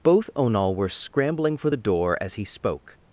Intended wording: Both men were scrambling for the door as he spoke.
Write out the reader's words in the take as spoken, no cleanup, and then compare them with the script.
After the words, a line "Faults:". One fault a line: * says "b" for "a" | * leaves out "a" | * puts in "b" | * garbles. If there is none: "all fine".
Both onal were scrambling for the door as he spoke.
Faults:
* says "onal" for "men"